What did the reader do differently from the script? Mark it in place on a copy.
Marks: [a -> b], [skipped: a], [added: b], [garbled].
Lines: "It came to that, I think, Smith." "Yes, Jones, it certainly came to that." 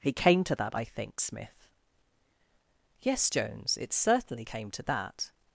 "It came to that, I think, Smith." "Yes, Jones, it certainly came to that."